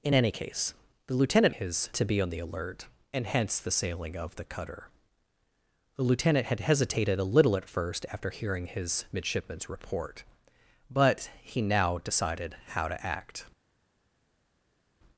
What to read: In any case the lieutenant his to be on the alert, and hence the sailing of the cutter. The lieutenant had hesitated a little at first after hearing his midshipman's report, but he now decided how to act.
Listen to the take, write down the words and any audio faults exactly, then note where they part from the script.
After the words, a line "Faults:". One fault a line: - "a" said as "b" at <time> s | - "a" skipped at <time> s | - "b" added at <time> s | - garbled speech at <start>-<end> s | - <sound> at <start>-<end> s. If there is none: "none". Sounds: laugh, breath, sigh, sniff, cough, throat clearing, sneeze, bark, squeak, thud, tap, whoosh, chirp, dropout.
In any case the lieutenant his to be on the alert, and hence the sailing of the cutter. The lieutenant had hesitated a little at first after hearing his midshipman's report, but he now decided how to act.
Faults:
none